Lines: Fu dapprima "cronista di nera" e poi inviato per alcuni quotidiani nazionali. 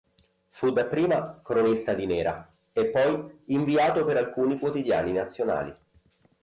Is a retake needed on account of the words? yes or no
no